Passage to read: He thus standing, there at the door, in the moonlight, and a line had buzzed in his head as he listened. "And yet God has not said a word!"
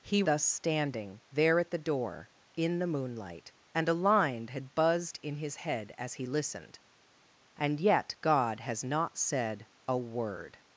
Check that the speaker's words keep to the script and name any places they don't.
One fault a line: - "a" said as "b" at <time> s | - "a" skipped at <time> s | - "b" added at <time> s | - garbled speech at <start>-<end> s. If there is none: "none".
none